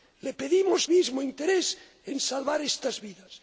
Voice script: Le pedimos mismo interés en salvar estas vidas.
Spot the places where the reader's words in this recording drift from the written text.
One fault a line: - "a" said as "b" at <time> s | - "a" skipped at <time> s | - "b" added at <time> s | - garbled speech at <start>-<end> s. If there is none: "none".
none